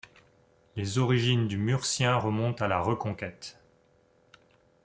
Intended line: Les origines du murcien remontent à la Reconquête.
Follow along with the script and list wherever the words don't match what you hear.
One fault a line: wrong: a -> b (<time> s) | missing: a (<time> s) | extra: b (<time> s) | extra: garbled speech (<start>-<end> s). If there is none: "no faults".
no faults